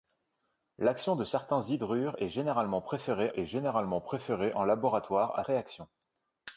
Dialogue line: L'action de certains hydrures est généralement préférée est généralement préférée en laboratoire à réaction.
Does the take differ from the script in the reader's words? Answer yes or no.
no